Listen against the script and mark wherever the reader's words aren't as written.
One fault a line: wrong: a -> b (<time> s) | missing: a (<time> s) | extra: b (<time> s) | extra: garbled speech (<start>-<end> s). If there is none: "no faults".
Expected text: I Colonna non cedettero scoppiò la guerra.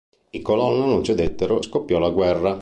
no faults